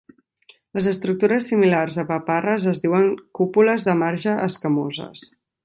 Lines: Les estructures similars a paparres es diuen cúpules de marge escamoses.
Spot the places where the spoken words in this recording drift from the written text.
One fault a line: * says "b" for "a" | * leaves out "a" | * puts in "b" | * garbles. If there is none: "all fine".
all fine